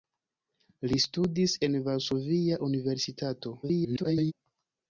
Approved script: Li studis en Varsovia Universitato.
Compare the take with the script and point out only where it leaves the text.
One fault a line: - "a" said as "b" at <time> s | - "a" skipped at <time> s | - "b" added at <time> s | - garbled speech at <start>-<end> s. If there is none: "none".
- garbled speech at 3.6-4.3 s